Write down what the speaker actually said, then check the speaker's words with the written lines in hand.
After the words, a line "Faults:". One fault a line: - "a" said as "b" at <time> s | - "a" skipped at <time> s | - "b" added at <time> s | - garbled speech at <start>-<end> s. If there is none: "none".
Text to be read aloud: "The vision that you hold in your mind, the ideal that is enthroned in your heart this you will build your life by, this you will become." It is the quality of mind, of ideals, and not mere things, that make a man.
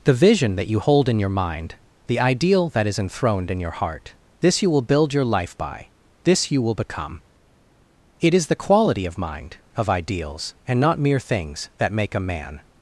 "The vision that you hold in your mind, the ideal that is enthroned in your heart this you will build your life by, this you will become." It is the quality of mind, of ideals, and not mere things, that make a man.
Faults:
none